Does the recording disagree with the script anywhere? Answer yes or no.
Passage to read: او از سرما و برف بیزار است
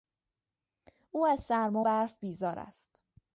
yes